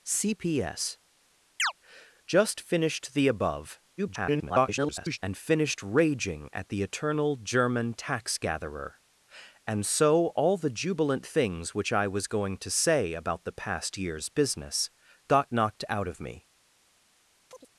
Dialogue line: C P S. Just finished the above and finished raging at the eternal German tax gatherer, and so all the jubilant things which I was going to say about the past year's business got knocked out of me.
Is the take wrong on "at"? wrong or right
right